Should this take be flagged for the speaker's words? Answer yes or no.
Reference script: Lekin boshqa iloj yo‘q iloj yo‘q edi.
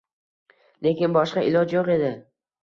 yes